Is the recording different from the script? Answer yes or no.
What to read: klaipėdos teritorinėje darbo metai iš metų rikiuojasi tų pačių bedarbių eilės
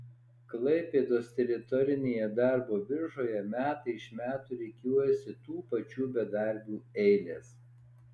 yes